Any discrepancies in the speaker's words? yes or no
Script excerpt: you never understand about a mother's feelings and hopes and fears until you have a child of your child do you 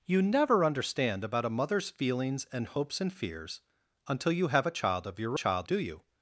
no